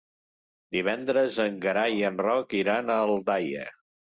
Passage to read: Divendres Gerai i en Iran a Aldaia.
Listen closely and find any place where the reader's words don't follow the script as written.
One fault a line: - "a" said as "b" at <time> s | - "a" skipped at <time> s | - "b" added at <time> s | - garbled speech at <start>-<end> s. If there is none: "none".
- "en" added at 1.4 s
- "Roc" added at 2.2 s